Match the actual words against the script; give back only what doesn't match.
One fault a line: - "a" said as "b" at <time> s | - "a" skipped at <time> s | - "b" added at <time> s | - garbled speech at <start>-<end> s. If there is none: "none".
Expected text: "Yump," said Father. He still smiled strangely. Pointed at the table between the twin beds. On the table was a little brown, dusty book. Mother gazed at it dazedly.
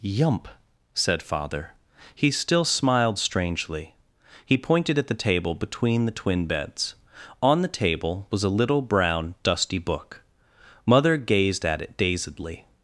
- "He" added at 4.4 s